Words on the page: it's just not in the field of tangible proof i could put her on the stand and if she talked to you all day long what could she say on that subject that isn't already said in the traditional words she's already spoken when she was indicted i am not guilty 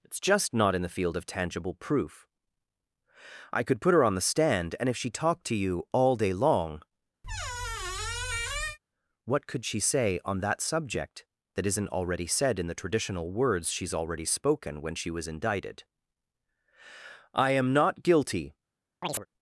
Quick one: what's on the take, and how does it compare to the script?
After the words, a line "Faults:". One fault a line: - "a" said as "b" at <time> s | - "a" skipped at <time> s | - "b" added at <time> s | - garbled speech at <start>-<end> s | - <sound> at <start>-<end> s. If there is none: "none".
it's just not in the field of tangible proof i could put her on the stand and if she talked to you all day long what could she say on that subject that isn't already said in the traditional words she's already spoken when she was indicted i am not guilty
Faults:
- squeak at 7.2-8.8 s
- chirp at 19.0-19.3 s